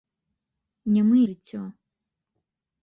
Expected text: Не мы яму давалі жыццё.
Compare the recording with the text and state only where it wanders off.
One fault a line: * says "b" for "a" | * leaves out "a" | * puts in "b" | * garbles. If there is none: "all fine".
* leaves out "яму давалі"